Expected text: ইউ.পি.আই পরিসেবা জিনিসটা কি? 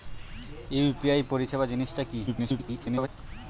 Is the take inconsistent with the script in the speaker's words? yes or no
yes